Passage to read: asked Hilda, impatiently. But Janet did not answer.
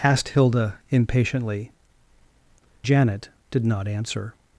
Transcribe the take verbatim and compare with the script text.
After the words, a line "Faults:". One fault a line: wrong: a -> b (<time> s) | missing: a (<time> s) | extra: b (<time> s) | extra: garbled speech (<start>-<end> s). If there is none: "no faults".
asked Hilda, impatiently. Janet did not answer.
Faults:
missing: But (1.8 s)